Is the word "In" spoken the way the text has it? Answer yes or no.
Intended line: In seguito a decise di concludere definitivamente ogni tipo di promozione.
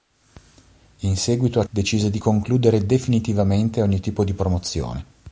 yes